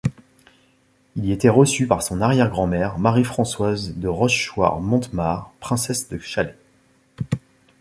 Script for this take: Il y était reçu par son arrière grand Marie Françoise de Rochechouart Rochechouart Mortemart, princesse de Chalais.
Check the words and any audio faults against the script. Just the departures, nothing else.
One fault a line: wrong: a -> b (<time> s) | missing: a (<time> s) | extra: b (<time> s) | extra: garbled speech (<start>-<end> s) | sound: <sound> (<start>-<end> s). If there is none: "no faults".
extra: mère (2.7 s)
missing: Rochechouart (4.8 s)